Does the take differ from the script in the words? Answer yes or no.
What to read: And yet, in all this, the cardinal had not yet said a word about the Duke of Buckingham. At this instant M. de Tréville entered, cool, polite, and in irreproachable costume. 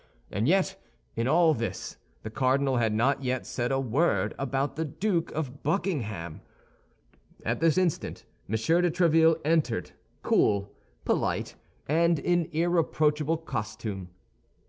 no